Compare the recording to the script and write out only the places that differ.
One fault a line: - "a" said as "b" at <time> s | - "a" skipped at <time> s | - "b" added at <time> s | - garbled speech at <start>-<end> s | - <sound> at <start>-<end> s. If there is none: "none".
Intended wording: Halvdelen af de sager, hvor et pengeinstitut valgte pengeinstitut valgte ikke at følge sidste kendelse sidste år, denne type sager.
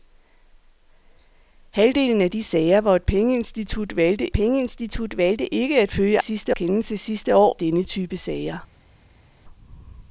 none